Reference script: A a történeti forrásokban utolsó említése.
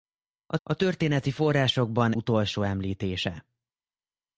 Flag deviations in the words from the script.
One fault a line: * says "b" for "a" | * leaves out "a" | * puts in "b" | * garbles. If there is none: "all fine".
all fine